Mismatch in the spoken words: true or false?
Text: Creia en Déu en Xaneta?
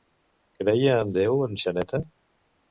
false